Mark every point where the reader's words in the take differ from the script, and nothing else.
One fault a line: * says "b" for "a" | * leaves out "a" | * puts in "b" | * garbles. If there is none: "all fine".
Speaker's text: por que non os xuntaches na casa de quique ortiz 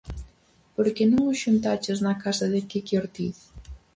all fine